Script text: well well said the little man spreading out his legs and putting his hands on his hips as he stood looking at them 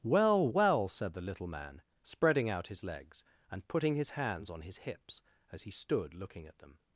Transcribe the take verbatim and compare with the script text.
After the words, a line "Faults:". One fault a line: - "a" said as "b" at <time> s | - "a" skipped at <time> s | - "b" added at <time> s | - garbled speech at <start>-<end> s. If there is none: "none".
well well said the little man spreading out his legs and putting his hands on his hips as he stood looking at them
Faults:
none